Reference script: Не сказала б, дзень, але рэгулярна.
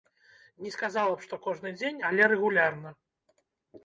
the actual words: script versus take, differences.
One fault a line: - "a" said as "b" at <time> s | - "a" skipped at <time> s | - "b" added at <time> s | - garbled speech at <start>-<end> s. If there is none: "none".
- "што кожны" added at 1.3 s